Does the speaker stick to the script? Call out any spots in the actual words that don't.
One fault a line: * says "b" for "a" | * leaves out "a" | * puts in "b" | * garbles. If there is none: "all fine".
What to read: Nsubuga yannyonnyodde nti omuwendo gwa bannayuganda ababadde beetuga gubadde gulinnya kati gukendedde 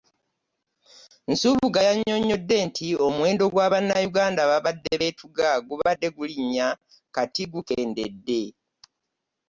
all fine